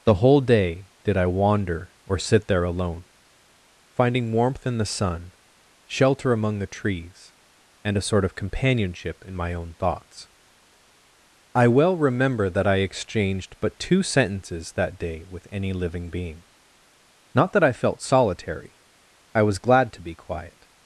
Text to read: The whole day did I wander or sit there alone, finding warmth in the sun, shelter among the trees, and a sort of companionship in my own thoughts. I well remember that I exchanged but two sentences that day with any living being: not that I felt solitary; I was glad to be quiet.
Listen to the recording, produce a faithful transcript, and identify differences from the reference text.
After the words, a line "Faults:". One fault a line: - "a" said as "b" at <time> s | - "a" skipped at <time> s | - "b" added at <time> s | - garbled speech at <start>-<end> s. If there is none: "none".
The whole day did I wander or sit there alone, finding warmth in the sun, shelter among the trees, and a sort of companionship in my own thoughts. I well remember that I exchanged but two sentences that day with any living being: not that I felt solitary; I was glad to be quiet.
Faults:
none